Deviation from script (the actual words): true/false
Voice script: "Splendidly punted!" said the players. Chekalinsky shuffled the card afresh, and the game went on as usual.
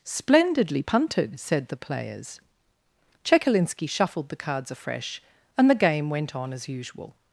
true